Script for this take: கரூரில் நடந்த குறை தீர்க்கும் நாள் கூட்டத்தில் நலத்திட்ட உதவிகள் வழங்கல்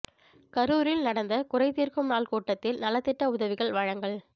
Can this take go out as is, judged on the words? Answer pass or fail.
pass